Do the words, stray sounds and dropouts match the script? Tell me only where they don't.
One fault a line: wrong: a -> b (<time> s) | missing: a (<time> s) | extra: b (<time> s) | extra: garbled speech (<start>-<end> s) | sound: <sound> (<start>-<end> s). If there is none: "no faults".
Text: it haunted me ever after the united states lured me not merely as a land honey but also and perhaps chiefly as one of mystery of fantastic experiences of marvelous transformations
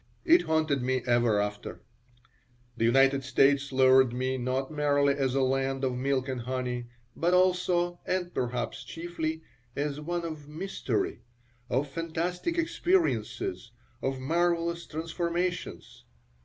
extra: of milk and (5.8 s)